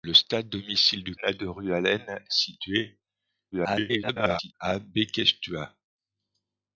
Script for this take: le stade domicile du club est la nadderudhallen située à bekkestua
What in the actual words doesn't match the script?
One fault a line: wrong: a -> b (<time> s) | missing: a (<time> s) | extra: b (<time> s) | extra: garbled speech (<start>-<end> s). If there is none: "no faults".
missing: club est la (1.1 s)
extra: garbled speech (3.5-4.5 s)